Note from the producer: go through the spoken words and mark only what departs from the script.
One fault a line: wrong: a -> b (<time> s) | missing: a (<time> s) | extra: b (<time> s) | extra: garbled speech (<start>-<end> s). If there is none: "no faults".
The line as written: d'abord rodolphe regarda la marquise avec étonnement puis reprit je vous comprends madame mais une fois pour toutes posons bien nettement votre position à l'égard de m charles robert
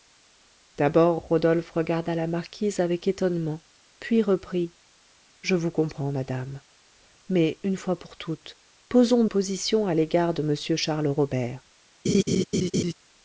missing: bien nettement votre (9.2 s)